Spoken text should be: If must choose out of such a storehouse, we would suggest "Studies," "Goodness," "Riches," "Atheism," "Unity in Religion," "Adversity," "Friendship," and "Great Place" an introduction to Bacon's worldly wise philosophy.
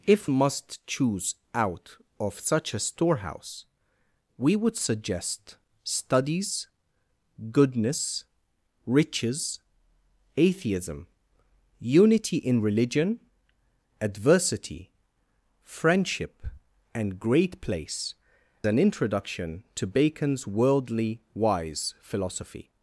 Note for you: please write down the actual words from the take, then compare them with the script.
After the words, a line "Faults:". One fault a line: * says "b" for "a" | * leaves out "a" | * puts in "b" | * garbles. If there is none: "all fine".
If must choose out of such a storehouse, we would suggest "Studies," "Goodness," "Riches," "Atheism," "Unity in Religion," "Adversity," "Friendship," and "Great Place" an introduction to Bacon's worldly wise philosophy.
Faults:
all fine